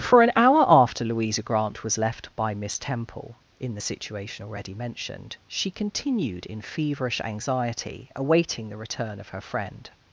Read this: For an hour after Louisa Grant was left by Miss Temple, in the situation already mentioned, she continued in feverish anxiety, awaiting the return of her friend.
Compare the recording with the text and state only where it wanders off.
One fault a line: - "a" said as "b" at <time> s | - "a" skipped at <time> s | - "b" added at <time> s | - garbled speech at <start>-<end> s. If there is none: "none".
none